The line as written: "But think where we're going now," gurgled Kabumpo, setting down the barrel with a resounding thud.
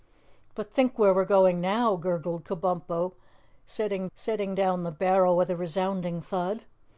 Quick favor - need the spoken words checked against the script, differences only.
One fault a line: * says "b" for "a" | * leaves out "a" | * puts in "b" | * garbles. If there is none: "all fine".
* puts in "setting"